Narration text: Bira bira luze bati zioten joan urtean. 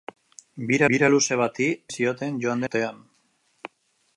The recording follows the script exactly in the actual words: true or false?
true